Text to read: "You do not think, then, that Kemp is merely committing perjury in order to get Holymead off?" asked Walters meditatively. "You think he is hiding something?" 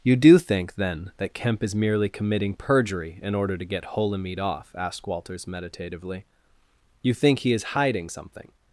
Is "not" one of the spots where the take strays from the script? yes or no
yes